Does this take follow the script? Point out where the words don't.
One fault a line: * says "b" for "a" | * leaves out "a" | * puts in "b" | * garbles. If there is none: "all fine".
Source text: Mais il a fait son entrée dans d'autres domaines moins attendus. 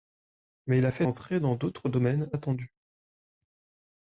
* leaves out "son"
* leaves out "moins"